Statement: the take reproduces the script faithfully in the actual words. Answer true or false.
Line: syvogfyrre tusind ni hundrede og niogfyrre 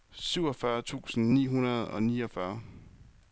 true